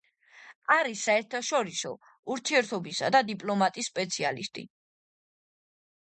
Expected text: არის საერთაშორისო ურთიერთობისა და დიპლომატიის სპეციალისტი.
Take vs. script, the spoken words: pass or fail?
pass